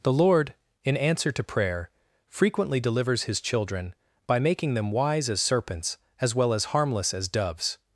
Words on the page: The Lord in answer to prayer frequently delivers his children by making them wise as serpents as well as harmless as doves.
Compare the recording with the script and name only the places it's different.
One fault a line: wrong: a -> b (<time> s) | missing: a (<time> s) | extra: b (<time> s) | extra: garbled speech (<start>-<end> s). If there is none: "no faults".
no faults